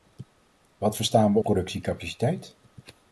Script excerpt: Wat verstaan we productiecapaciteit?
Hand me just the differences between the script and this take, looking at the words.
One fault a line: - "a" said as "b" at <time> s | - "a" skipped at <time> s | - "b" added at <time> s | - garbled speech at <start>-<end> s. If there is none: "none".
none